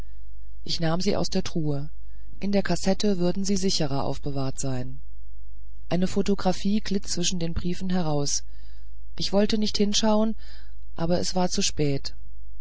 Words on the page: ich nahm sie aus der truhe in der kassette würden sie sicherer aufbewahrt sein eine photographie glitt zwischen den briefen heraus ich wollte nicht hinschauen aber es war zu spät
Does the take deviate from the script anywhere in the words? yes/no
no